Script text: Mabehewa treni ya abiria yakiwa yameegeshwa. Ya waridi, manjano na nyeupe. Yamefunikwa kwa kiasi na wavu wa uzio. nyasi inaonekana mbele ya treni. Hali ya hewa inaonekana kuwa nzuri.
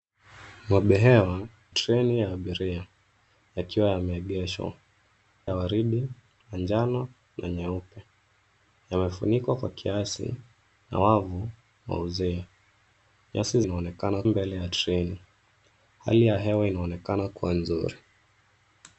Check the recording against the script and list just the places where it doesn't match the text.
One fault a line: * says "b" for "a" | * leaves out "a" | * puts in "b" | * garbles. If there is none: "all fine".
all fine